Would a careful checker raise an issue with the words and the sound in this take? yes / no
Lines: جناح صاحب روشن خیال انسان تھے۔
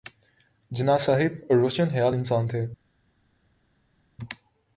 no